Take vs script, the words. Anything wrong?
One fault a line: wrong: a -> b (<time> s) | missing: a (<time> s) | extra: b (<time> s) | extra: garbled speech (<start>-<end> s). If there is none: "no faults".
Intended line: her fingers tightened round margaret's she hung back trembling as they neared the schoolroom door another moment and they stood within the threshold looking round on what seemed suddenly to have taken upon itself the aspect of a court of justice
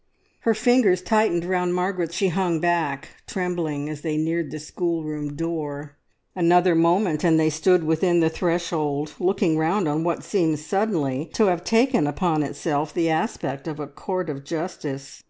no faults